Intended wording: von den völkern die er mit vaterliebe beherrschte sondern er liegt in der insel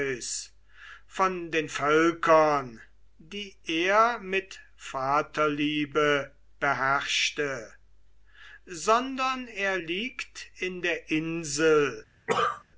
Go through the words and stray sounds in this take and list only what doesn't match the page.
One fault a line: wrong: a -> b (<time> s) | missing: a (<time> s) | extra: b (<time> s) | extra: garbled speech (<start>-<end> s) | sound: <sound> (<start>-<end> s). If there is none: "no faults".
sound: cough (12.3-12.6 s)